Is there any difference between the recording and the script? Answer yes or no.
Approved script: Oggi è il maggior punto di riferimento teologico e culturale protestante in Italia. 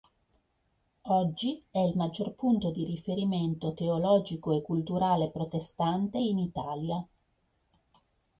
no